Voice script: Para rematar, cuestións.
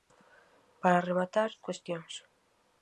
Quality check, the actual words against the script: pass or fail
pass